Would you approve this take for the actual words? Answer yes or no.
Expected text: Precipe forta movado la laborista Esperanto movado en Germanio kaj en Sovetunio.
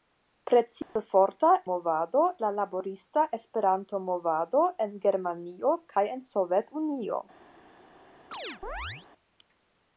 yes